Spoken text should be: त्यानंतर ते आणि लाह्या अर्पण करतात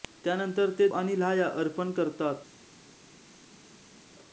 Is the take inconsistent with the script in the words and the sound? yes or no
no